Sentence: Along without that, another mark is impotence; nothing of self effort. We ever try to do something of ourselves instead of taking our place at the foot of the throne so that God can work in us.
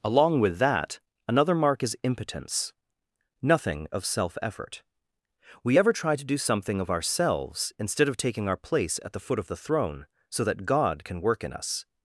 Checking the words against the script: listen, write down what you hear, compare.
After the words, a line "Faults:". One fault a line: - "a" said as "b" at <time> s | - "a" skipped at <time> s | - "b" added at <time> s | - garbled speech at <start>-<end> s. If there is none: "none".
Along with that, another mark is impotence; nothing of self effort. We ever try to do something of ourselves instead of taking our place at the foot of the throne so that God can work in us.
Faults:
- "without" said as "with" at 0.4 s